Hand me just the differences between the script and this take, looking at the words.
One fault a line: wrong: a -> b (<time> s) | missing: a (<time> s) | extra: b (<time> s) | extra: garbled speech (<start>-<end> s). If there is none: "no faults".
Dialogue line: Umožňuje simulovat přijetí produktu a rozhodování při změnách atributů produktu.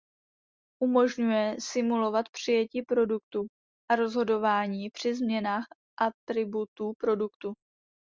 no faults